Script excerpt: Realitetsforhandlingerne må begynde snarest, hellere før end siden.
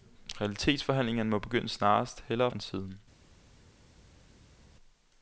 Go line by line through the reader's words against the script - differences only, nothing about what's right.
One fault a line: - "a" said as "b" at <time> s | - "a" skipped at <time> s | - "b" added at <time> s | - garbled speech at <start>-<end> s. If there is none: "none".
- "før" skipped at 2.5 s